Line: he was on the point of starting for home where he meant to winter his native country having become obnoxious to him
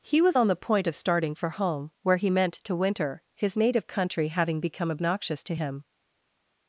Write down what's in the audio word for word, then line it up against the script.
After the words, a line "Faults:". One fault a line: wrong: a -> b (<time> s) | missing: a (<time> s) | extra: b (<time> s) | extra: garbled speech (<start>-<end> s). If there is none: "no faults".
he was on the point of starting for home where he meant to winter his native country having become obnoxious to him
Faults:
no faults